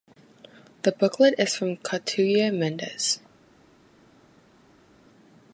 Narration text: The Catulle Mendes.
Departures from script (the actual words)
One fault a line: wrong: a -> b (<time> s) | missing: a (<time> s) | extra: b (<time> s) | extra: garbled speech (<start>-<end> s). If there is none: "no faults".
extra: booklet is from (0.9 s)